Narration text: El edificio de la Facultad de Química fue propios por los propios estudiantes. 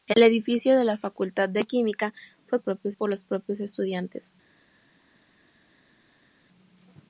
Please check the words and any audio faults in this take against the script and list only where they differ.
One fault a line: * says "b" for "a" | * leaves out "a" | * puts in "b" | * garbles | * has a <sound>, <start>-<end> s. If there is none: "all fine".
all fine